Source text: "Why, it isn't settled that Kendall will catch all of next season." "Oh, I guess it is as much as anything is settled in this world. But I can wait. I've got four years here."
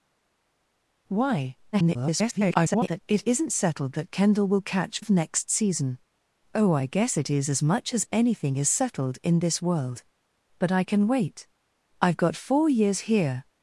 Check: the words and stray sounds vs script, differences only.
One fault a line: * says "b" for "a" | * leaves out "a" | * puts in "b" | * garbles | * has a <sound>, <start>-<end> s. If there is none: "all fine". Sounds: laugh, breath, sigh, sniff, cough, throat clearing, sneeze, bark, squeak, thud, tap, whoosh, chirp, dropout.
* garbles
* leaves out "all"